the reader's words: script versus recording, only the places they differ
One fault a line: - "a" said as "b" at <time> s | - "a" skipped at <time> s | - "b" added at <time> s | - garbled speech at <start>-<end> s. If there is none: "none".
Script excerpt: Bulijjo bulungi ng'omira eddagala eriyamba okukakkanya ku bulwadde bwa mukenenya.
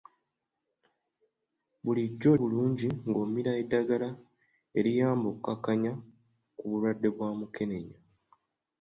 none